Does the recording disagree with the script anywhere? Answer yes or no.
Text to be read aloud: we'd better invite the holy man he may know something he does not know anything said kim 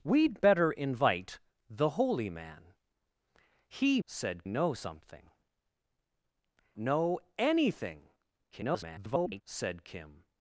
yes